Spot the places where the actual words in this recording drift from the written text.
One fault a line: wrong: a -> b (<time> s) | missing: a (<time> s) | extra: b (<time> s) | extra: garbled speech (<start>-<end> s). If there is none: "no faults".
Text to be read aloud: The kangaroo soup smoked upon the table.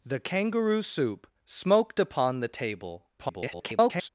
extra: garbled speech (3.2-4.1 s)